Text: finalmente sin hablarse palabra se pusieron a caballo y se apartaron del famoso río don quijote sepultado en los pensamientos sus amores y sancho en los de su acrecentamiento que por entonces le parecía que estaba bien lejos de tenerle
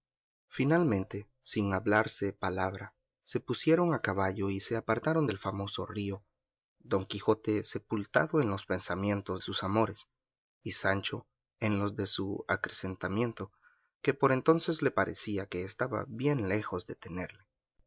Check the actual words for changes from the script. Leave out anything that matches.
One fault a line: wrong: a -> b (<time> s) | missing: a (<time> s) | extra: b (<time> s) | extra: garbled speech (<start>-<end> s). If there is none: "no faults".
no faults